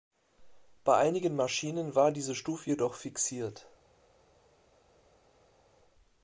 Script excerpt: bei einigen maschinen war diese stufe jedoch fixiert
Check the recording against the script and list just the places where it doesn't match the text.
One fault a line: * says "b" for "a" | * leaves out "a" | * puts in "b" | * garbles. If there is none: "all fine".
all fine